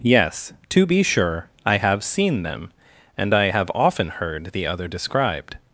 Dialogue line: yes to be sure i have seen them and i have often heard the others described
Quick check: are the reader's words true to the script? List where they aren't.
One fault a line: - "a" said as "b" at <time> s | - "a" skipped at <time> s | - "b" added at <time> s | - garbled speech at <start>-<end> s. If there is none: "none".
- "others" said as "other" at 4.7 s